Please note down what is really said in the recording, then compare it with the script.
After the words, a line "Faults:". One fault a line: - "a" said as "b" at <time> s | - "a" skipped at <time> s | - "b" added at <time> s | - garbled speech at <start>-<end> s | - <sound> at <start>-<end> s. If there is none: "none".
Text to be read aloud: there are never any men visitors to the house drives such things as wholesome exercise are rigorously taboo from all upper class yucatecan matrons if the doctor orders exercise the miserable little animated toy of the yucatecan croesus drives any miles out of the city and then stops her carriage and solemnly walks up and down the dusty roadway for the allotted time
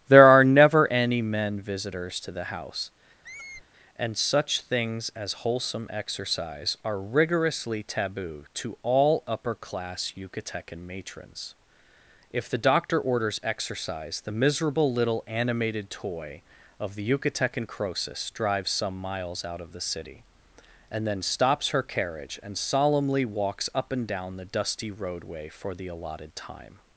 there are never any men visitors to the house and such things as wholesome exercise are rigorously taboo to all upper class yucatecan matrons if the doctor orders exercise the miserable little animated toy of the yucatecan croesus drives some miles out of the city and then stops her carriage and solemnly walks up and down the dusty roadway for the allotted time
Faults:
- squeak at 3.2-3.6 s
- "drives" said as "and" at 4.0 s
- "from" said as "to" at 8.5 s
- "any" said as "some" at 18.7 s